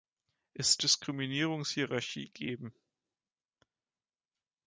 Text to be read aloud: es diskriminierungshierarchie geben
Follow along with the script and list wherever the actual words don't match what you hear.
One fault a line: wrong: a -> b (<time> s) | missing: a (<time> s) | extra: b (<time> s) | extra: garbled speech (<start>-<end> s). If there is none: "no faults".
no faults